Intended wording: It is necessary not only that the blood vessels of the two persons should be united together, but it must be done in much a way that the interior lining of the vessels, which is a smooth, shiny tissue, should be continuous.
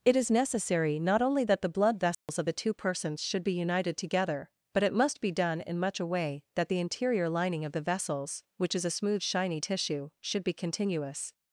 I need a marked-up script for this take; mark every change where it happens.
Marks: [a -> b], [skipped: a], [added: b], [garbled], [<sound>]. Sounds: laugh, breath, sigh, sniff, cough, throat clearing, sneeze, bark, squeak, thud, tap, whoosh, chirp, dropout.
It is necessary not only that the blood vessels [dropout] of the two persons should be united together, but it must be done in much a way that the interior lining of the vessels, which is a smooth, shiny tissue, should be continuous.